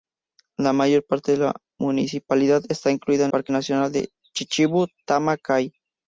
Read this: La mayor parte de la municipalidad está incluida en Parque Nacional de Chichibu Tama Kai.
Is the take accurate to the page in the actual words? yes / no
yes